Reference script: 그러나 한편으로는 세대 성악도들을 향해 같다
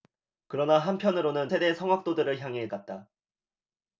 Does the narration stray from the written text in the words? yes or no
no